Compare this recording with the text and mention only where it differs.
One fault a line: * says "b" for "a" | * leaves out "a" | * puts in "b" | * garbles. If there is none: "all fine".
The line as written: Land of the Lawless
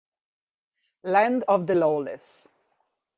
all fine